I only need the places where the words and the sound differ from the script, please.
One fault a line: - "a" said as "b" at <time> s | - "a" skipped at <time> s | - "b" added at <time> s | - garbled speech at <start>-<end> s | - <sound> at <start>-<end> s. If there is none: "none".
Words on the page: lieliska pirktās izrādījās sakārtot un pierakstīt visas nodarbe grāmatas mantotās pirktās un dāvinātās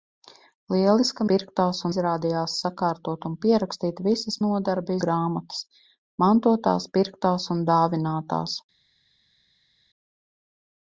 none